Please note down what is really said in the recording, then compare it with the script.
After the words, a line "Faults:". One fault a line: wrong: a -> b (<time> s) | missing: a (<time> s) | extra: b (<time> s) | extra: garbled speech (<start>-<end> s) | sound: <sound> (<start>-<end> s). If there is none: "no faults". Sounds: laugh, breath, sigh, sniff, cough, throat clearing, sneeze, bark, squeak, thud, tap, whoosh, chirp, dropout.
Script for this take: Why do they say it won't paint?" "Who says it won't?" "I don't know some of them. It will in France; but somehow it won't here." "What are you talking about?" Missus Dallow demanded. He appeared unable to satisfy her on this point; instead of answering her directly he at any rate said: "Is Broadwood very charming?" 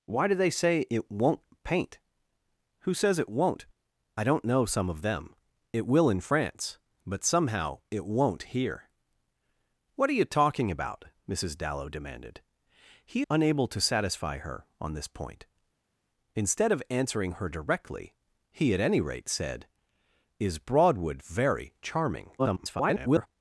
Why do they say it won't paint?" "Who says it won't?" "I don't know some of them. It will in France; but somehow it won't here." "What are you talking about?" Missus Dallow demanded. He unable to satisfy her on this point; instead of answering her directly he at any rate said: "Is Broadwood very charming?" [garbled]
Faults:
missing: appeared (13.2 s)
extra: garbled speech (22.4-23.3 s)